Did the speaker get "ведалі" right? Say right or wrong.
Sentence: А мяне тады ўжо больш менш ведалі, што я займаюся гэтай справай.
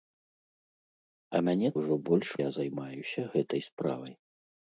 wrong